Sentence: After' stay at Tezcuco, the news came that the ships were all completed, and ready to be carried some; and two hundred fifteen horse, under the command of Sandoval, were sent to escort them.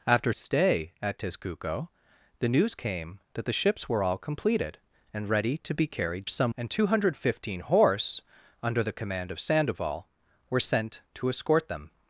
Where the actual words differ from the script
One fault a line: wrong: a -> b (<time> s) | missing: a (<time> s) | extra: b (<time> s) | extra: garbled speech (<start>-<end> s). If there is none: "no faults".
no faults